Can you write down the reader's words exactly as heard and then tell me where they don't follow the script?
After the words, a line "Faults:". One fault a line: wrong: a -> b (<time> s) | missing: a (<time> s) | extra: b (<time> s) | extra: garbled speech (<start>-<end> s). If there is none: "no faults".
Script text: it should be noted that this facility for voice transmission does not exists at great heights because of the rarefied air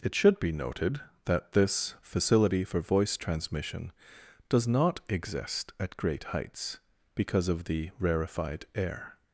it should be noted that this facility for voice transmission does not exist at great heights because of the rarefied air
Faults:
wrong: exists -> exist (5.1 s)